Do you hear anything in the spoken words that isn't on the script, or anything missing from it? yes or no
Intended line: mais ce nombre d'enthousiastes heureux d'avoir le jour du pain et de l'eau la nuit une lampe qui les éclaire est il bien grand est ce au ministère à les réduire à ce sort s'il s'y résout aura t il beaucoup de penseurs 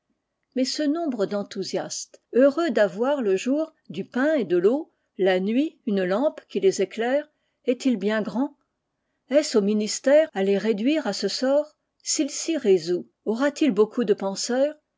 no